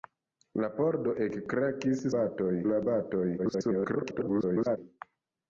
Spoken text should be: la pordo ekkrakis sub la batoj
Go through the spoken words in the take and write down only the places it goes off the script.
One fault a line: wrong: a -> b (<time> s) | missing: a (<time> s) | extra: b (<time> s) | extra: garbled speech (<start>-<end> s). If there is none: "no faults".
wrong: sub -> batoj (2.2 s)
extra: garbled speech (3.4-4.8 s)